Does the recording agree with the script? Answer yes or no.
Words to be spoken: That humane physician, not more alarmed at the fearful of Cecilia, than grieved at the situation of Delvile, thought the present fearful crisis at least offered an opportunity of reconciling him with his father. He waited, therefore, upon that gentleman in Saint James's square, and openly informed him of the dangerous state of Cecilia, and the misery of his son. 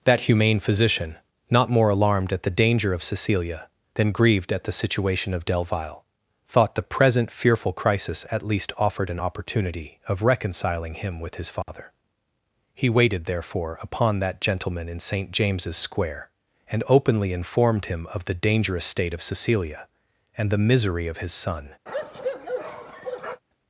no